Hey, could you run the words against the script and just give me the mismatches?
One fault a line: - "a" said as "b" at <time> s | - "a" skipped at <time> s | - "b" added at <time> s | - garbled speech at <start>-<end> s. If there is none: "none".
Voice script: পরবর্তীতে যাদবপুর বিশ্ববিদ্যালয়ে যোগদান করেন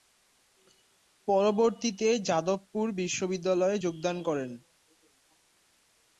none